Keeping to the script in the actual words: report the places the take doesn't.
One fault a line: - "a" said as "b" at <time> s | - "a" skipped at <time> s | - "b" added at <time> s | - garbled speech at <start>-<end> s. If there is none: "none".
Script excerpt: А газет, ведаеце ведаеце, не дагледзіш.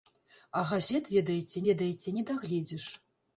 none